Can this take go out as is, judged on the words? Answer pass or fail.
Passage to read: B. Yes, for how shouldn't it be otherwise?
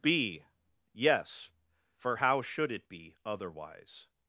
fail